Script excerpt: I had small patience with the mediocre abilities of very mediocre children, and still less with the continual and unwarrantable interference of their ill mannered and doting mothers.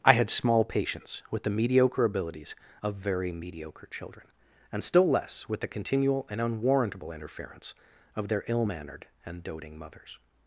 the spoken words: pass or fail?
pass